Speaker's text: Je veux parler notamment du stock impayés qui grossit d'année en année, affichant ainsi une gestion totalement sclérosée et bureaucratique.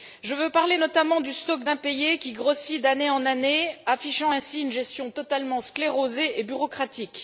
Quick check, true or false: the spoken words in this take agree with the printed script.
true